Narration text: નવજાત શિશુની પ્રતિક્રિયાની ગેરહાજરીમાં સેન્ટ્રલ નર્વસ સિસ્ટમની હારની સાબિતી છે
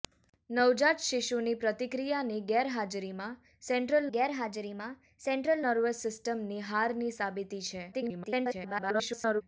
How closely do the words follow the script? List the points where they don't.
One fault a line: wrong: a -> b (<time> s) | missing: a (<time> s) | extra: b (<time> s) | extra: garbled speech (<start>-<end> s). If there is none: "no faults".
extra: ગેરહાજરીમાં સેન્ટ્રલ (4.1 s)
extra: garbled speech (7.9-9.4 s)